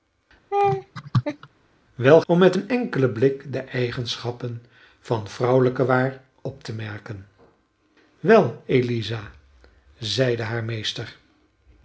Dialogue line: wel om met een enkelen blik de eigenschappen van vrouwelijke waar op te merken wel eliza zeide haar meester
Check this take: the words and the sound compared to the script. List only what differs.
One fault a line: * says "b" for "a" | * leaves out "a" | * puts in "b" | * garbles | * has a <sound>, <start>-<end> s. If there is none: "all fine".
* has a laugh, 0.5-1.5 s